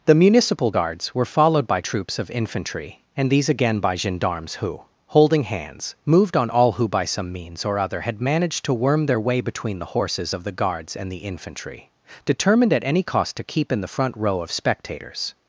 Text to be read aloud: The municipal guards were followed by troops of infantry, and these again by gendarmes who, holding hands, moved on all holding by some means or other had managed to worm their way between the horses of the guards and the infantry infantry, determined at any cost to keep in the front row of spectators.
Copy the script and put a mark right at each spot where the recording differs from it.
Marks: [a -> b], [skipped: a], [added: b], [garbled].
The municipal guards were followed by troops of infantry, and these again by gendarmes who, holding hands, moved on all [holding -> who] by some means or other had managed to worm their way between the horses of the guards and the infantry [skipped: infantry,] determined at any cost to keep in the front row of spectators.